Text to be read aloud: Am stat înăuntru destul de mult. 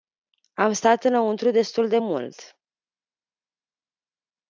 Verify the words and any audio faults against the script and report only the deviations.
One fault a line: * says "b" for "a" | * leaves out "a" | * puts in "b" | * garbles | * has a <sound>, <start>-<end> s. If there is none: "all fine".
all fine